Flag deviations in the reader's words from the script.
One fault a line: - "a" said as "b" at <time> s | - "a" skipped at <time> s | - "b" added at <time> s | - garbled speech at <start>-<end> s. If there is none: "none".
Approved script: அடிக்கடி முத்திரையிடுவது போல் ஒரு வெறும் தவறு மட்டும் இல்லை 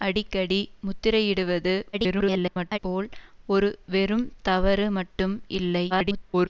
- garbled speech at 1.9-2.8 s
- garbled speech at 5.9-6.5 s